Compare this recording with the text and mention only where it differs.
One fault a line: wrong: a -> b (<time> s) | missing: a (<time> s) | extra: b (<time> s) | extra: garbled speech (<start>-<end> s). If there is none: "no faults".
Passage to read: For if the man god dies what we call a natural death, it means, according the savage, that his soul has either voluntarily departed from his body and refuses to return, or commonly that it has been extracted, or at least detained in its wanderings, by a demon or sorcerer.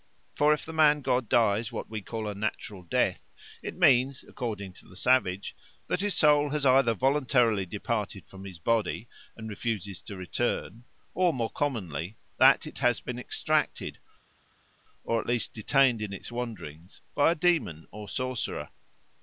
extra: to (4.7 s)
extra: more (11.3 s)